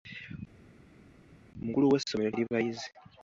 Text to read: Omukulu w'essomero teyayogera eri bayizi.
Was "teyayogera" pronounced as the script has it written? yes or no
no